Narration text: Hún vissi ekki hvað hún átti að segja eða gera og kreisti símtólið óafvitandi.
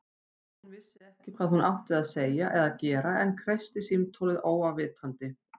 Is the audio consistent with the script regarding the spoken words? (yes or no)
no